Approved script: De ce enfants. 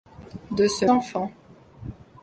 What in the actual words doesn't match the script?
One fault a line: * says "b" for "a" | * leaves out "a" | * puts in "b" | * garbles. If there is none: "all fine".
all fine